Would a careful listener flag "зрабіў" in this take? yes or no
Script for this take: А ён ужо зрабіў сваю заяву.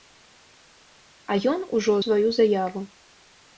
yes